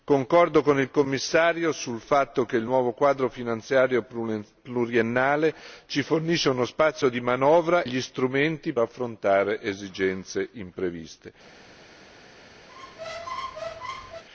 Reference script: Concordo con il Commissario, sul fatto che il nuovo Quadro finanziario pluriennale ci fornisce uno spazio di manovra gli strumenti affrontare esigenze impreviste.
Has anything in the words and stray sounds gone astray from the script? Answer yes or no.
yes